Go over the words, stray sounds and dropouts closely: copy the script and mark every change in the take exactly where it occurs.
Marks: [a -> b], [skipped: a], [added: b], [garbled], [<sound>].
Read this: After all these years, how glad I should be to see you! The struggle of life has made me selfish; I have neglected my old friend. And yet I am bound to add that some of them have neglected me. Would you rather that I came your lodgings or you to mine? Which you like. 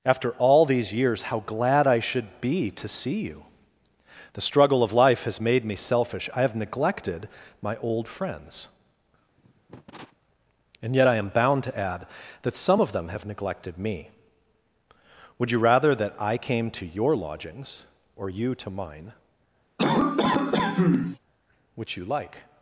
After all these years, how glad I should be to see you! The struggle of life has made me selfish; I have neglected my old [friend. -> friends] [cough] And yet I am bound to add that some of them have neglected me. Would you rather that I came [added: to] your lodgings or you to mine? [cough] Which you like.